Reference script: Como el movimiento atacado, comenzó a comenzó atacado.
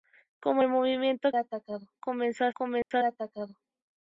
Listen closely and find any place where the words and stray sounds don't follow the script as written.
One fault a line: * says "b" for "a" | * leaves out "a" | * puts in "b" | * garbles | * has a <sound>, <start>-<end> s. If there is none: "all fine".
* has a dropout, 2.8-2.9 s